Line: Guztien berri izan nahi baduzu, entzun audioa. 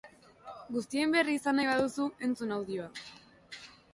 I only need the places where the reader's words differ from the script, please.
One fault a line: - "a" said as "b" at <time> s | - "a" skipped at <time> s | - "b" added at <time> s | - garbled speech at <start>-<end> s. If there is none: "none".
none